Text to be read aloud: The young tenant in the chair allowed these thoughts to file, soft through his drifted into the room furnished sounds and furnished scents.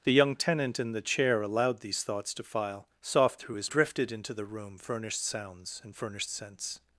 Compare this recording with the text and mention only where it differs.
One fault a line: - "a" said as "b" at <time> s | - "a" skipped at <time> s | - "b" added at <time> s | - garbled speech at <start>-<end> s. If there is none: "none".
none